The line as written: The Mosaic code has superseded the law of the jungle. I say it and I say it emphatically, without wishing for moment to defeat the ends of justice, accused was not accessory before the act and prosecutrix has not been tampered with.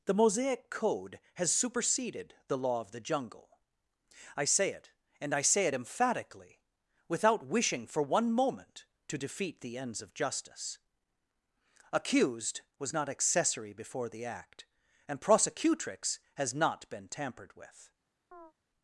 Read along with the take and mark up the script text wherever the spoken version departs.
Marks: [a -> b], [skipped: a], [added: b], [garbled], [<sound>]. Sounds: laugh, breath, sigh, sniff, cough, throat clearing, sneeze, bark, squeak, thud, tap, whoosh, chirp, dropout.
The Mosaic code has superseded the law of the jungle. I say it and I say it emphatically, without wishing for [added: one] moment to defeat the ends of justice, accused was not accessory before the act and prosecutrix has not been tampered with. [chirp]